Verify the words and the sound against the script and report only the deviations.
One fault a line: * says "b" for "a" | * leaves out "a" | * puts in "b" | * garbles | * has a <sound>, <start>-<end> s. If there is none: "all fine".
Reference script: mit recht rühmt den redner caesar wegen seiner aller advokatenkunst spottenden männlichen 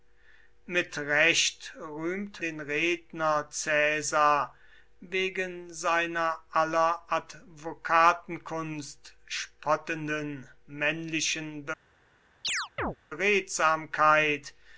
* has a chirp, 12.4-13.0 s